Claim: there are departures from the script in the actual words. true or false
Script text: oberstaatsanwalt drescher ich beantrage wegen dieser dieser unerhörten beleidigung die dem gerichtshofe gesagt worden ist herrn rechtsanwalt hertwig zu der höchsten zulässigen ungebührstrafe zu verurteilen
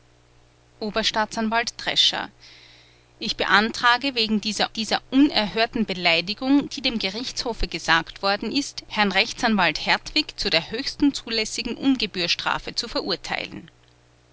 false